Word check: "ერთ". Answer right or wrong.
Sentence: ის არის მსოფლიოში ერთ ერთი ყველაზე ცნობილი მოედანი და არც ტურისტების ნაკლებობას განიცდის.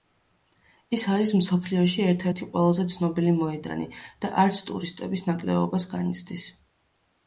right